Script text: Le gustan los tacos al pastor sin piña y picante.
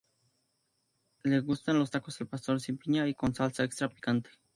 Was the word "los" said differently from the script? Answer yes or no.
no